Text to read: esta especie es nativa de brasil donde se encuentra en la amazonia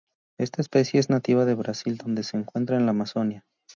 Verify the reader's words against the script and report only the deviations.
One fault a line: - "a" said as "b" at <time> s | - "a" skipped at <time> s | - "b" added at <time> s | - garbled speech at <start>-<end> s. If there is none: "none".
none